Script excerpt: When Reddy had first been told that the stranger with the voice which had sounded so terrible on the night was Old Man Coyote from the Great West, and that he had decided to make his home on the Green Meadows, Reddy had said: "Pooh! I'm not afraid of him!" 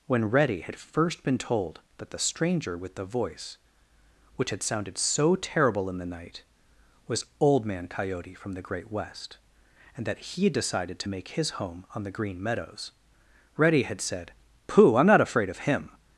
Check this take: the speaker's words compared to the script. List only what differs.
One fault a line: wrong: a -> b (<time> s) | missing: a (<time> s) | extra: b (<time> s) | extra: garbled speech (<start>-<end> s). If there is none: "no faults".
wrong: on -> in (5.9 s)